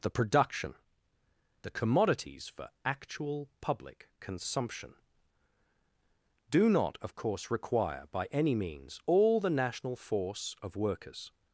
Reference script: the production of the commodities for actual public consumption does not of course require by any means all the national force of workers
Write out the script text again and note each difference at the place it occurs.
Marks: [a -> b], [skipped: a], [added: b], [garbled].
the production [skipped: of] the commodities for actual public consumption [does -> do] not of course require by any means all the national force of workers